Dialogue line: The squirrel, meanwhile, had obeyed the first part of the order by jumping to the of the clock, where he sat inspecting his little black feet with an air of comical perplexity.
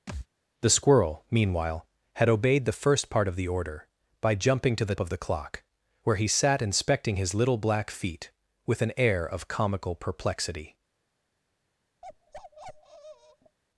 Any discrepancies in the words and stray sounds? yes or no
yes